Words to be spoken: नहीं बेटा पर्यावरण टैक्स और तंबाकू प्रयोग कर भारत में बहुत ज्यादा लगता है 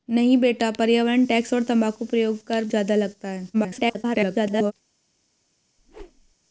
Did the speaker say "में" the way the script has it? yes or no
no